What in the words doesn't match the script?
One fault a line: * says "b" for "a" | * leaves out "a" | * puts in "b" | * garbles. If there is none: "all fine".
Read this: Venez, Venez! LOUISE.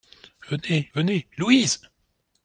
all fine